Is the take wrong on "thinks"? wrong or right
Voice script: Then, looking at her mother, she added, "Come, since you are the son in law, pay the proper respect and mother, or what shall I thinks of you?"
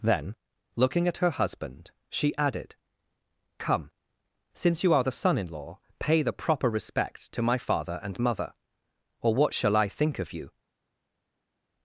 wrong